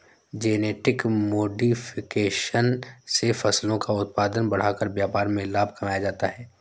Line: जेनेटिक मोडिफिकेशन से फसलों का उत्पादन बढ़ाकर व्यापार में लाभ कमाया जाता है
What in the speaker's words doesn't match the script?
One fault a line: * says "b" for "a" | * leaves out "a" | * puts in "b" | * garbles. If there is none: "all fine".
all fine